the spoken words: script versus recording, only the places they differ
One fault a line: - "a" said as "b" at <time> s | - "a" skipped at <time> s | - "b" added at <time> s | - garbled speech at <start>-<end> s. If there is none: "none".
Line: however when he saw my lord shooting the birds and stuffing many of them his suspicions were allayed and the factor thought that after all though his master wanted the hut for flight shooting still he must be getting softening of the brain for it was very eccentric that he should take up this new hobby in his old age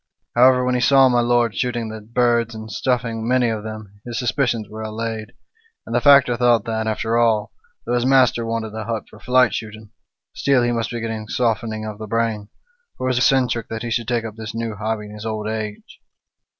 - "very" skipped at 13.2 s